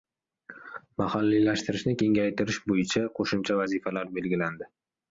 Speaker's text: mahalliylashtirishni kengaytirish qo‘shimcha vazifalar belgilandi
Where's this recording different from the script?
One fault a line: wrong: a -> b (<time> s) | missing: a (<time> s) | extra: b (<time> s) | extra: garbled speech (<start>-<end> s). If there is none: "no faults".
extra: bo‘yicha (2.7 s)